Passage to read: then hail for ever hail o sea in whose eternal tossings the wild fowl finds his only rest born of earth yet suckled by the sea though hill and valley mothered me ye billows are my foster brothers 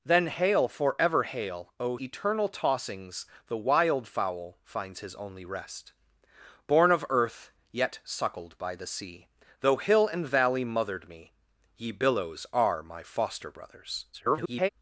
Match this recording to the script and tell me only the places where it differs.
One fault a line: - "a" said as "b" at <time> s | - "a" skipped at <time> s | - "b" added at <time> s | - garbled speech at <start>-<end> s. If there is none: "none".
- "sea in whose" skipped at 2.0 s
- garbled speech at 14.1-14.7 s